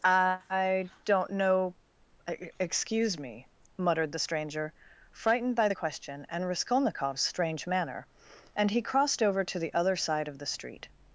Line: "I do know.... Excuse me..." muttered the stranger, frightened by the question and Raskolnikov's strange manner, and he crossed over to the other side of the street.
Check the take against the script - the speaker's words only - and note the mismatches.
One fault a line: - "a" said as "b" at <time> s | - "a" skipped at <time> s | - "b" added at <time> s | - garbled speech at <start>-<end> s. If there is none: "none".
- "do" said as "don't" at 1.1 s